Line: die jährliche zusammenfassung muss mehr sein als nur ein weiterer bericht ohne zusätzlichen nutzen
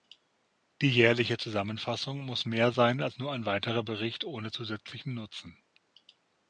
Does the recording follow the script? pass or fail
pass